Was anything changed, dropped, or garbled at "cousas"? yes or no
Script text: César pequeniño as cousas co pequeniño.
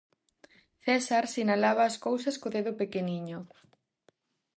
no